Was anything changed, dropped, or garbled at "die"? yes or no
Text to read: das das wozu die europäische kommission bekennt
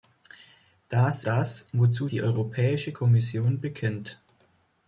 no